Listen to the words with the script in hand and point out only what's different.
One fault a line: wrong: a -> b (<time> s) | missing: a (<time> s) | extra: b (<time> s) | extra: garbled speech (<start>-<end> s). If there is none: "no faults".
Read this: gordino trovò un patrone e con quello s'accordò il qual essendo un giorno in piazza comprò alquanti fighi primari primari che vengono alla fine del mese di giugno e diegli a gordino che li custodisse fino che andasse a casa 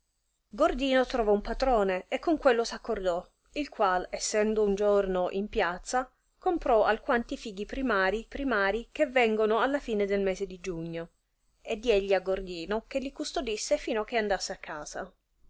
no faults